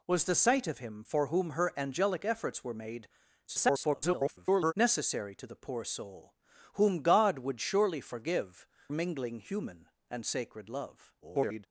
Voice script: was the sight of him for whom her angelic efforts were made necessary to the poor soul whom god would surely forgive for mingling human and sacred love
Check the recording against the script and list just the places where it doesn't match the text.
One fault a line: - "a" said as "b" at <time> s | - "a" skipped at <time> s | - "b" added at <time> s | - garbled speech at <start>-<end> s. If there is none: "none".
- garbled speech at 3.5-4.7 s
- "for" skipped at 8.7 s
- garbled speech at 11.2-11.7 s